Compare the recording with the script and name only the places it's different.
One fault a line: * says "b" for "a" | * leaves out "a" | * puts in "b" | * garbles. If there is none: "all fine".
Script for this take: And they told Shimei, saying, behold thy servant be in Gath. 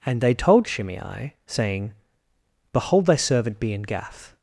all fine